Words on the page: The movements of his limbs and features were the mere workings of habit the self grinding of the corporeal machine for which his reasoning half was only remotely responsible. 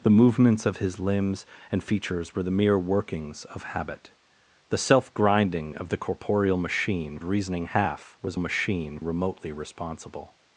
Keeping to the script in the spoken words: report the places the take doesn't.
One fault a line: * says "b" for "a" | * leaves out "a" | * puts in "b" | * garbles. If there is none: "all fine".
* leaves out "for which his"
* says "machine" for "only"